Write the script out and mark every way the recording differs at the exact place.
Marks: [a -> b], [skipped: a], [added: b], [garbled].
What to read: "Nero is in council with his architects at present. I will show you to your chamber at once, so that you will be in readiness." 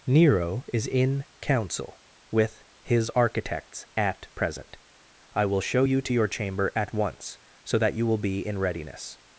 "Nero is in council with his architects at present. I will show you to your chamber at once, so that you will be in readiness."